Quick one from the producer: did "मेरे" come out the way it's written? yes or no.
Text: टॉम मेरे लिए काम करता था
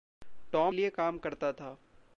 no